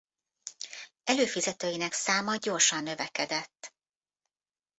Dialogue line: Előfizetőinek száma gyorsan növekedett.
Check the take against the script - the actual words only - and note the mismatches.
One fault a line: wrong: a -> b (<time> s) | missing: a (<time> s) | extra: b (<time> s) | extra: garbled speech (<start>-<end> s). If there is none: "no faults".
no faults